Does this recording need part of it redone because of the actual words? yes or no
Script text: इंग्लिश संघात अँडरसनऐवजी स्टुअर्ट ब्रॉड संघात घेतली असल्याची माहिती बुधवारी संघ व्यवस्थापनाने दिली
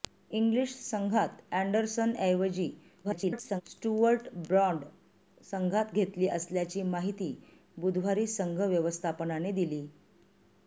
yes